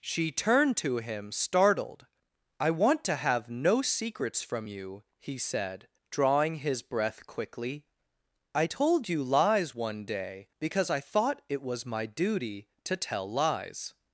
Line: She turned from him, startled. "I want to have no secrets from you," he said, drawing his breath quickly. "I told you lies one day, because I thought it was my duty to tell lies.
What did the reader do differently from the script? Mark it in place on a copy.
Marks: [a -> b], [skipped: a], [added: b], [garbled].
She turned [from -> to] him, startled. "I want to have no secrets from you," he said, drawing his breath quickly. "I told you lies one day, because I thought it was my duty to tell lies.